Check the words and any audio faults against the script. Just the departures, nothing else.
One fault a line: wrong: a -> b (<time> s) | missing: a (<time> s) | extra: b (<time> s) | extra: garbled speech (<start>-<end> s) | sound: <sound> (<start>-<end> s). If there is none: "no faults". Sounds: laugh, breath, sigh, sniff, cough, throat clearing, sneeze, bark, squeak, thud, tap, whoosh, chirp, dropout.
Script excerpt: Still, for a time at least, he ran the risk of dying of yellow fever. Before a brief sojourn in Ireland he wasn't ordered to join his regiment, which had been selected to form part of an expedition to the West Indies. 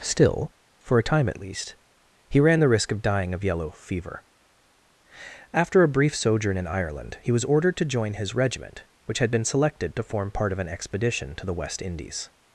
wrong: Before -> After (5.5 s)
wrong: wasn't -> was (7.3 s)